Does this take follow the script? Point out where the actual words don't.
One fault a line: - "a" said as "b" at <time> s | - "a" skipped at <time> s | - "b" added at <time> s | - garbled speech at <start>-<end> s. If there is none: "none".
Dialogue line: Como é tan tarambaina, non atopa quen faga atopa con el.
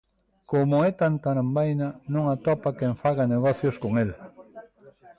- "atopa" said as "negocios" at 3.3 s